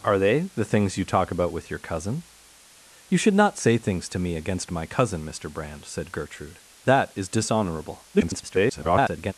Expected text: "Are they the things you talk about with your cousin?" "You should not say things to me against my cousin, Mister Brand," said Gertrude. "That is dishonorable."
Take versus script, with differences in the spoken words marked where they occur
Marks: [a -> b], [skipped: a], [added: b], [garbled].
"Are they the things you talk about with your cousin?" "You should not say things to me against my cousin, Mister Brand," said Gertrude. "That is dishonorable." [garbled]